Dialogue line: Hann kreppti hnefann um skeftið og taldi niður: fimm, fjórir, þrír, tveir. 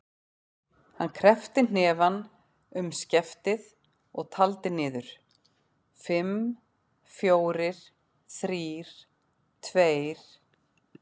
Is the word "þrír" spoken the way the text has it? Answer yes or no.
yes